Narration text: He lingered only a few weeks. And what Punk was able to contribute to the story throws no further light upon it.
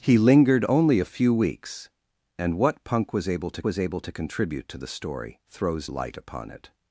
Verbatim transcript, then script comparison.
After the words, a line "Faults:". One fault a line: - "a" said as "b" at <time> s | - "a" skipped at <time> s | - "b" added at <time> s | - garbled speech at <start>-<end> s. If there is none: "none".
He lingered only a few weeks. And what Punk was able to was able to contribute to the story throws light upon it.
Faults:
- "was able to" added at 3.6 s
- "no further" skipped at 5.9 s